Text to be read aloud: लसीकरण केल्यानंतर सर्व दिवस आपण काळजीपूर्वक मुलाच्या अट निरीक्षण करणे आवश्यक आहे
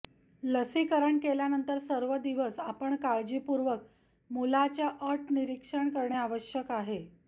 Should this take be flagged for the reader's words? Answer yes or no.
no